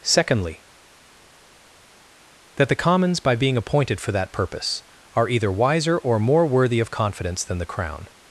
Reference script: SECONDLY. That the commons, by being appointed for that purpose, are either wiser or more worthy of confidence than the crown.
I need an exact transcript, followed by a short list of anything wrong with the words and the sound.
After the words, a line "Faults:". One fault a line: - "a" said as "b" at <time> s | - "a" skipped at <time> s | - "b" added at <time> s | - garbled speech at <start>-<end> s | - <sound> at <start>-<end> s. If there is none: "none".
SECONDLY. That the commons, by being appointed for that purpose, are either wiser or more worthy of confidence than the crown.
Faults:
none